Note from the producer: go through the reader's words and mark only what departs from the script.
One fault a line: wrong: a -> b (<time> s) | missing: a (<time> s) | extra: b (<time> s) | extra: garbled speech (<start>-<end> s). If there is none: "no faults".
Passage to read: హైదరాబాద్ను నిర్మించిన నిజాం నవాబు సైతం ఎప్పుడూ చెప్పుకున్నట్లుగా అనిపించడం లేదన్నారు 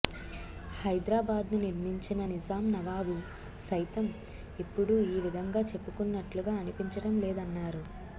extra: ఈ విధంగా (5.1 s)